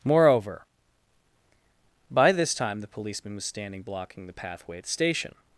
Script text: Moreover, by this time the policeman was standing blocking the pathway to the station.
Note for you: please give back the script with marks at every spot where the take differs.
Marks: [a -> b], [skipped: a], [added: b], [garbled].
Moreover, by this time the policeman was standing blocking the pathway [to -> at] the station.